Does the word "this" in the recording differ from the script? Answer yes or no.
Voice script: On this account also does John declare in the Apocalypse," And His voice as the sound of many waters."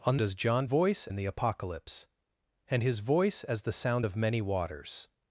yes